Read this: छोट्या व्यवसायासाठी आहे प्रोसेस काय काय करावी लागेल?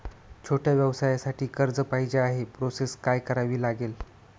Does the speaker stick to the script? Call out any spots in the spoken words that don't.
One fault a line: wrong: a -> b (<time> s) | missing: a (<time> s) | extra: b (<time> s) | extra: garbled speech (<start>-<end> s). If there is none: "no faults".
extra: कर्ज पाहिजे (1.5 s)
missing: काय (3.2 s)